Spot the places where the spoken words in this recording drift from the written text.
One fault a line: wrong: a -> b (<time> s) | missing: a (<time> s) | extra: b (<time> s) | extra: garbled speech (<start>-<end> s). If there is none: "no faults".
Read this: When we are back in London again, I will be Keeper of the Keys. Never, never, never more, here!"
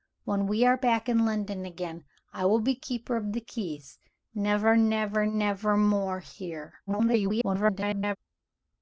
extra: garbled speech (6.9-8.2 s)